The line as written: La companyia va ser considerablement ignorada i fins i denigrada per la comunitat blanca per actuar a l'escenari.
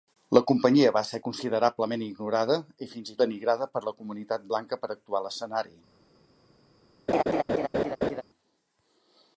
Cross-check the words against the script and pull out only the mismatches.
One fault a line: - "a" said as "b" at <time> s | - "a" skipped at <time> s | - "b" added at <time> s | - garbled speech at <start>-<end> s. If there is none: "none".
none